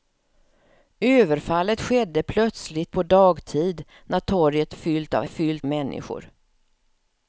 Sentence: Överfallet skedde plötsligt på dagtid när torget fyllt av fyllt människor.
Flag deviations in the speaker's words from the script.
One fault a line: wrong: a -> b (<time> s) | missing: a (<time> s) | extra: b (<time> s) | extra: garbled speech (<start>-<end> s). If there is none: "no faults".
no faults